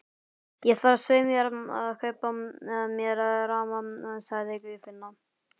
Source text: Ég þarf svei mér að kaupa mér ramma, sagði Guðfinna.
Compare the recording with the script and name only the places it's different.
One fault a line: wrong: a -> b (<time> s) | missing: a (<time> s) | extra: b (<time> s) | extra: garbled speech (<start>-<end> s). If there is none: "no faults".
no faults